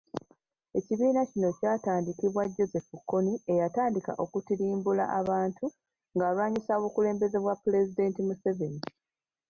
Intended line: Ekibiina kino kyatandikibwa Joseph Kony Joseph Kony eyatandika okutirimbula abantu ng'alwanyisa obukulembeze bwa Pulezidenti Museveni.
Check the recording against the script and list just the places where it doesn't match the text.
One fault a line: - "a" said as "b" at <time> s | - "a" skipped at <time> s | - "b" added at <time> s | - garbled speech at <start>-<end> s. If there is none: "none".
- "Joseph Kony" skipped at 3.3 s